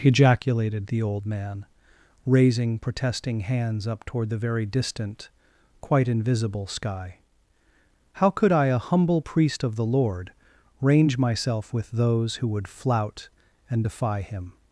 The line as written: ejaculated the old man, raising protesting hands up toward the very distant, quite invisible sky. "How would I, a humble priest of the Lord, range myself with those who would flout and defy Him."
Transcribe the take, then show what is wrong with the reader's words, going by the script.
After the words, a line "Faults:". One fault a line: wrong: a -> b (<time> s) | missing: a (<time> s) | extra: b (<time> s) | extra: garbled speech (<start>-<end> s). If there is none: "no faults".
ejaculated the old man, raising protesting hands up toward the very distant, quite invisible sky. "How could I, a humble priest of the Lord, range myself with those who would flout and defy Him."
Faults:
wrong: would -> could (8.3 s)